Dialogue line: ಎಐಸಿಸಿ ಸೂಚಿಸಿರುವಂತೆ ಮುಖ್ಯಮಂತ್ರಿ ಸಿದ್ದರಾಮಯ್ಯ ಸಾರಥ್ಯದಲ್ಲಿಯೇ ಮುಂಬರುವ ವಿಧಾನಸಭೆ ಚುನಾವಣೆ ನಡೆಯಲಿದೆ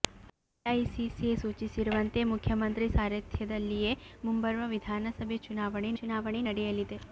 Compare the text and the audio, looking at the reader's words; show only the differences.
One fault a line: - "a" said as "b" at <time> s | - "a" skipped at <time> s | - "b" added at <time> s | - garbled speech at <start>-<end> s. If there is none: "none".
- "ಸಿದ್ದರಾಮಯ್ಯ" skipped at 2.9 s
- "ಚುನಾವಣೆ" added at 6.0 s